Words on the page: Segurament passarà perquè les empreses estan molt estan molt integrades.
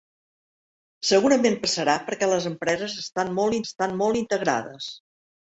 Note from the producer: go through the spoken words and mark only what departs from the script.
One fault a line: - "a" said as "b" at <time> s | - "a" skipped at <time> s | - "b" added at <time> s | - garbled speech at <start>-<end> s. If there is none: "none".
none